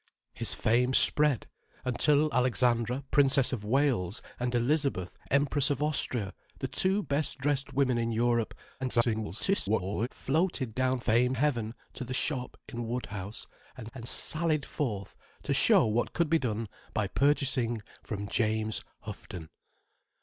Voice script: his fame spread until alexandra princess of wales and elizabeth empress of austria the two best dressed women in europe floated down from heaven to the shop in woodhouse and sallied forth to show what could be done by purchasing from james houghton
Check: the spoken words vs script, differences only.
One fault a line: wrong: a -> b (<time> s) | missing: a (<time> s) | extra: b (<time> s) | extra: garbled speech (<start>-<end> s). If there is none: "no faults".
extra: garbled speech (8.8-10.1 s)
wrong: from -> fame (11.0 s)
extra: and (13.9 s)